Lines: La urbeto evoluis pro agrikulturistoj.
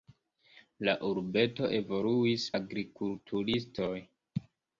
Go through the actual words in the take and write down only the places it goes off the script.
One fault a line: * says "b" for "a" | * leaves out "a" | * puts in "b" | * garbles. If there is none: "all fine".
* leaves out "pro"